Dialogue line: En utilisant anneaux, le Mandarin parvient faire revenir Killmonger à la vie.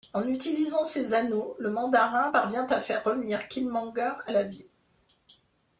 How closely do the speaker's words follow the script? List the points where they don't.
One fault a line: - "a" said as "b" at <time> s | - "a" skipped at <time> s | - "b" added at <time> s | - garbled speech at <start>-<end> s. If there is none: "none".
- "ses" added at 0.8 s
- "à" added at 2.7 s